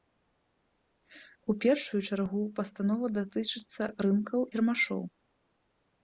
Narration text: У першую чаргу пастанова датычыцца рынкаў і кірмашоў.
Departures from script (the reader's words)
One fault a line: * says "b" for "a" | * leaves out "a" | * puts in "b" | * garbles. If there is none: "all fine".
* leaves out "і"